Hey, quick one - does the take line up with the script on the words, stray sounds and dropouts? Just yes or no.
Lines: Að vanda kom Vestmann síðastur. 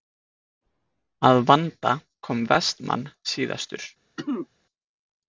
no